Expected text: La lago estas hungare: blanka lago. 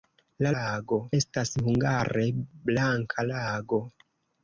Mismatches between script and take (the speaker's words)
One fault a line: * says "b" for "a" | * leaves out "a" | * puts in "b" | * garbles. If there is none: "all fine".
all fine